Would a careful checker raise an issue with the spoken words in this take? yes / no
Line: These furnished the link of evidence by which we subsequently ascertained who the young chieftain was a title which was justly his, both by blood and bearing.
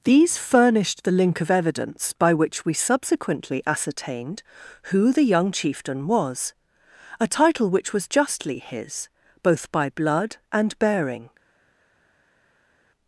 no